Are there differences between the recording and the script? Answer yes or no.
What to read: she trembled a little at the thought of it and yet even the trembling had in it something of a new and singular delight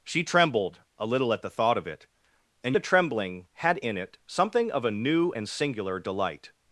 yes